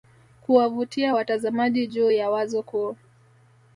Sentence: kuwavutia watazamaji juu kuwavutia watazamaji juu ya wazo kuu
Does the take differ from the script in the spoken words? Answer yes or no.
yes